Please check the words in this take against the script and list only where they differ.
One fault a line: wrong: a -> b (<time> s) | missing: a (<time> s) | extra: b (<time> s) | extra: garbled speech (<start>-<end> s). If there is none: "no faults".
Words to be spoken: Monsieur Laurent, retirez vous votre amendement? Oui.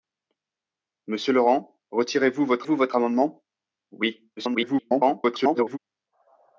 extra: vous votre (2.6 s)
extra: garbled speech (4.4-5.8 s)